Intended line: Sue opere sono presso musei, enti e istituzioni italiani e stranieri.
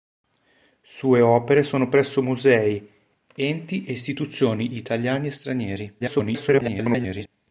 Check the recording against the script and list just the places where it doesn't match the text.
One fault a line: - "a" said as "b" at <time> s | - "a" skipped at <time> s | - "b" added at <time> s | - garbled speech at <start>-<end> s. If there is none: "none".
- garbled speech at 6.0-7.3 s